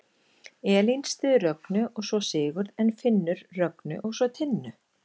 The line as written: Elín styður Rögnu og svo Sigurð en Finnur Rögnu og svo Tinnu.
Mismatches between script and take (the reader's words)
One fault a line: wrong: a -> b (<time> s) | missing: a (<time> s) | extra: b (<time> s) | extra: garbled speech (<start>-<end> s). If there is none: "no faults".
no faults